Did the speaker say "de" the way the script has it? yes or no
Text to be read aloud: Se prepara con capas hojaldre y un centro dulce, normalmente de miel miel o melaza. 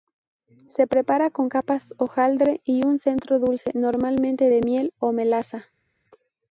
yes